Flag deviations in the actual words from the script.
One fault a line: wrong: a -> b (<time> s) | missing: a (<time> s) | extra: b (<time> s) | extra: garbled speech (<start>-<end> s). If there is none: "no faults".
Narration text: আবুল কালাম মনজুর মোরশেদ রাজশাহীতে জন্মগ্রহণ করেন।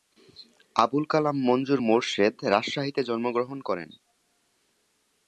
no faults